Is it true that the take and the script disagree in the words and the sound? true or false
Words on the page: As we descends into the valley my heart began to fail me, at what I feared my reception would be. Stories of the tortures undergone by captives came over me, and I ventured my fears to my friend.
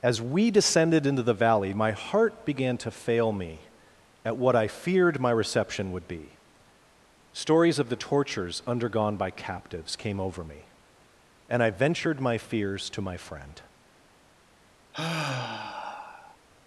true